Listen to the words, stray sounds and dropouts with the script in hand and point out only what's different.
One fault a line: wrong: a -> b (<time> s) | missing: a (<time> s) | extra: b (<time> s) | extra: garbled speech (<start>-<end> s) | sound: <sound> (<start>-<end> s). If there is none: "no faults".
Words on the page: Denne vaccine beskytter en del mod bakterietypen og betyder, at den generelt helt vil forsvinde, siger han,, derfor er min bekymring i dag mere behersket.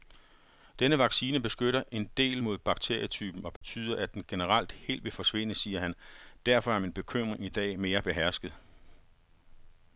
sound: dropout (3.6-3.6 s)